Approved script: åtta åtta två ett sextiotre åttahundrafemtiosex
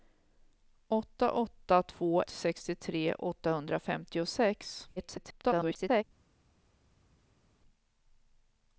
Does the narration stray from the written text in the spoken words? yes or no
yes